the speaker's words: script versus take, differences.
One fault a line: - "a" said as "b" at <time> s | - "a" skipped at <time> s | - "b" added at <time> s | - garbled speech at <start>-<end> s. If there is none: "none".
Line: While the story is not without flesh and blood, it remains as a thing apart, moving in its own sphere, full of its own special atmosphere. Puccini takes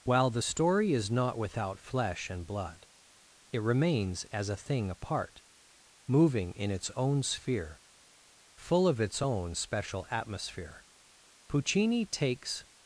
none